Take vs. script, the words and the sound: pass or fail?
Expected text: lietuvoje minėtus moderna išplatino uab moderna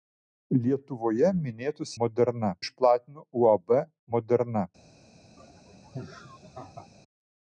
fail